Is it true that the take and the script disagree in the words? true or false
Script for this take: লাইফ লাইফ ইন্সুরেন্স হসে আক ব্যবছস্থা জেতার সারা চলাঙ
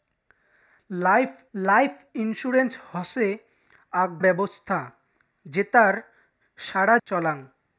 false